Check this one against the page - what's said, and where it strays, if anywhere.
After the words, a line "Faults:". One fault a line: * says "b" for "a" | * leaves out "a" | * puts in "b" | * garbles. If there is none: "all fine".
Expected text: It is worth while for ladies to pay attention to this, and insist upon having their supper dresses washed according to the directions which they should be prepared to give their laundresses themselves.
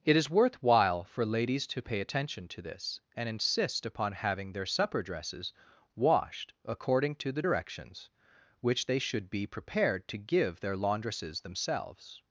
It is worth while for ladies to pay attention to this, and insist upon having their supper dresses washed according to the directions which they should be prepared to give their laundresses themselves.
Faults:
all fine